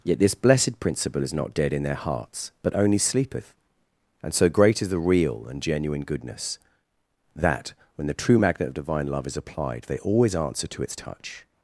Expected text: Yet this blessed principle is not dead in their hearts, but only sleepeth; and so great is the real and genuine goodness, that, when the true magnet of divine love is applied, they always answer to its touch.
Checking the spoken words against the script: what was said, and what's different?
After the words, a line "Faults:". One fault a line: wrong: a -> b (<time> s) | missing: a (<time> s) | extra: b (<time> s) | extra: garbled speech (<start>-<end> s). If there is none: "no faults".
Yet this blessed principle is not dead in their hearts, but only sleepeth; and so great is the real and genuine goodness, that, when the true magnet of divine love is applied, they always answer to its touch.
Faults:
no faults